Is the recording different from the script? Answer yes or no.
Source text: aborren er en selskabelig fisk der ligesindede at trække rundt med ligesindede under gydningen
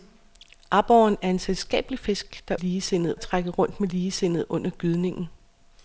no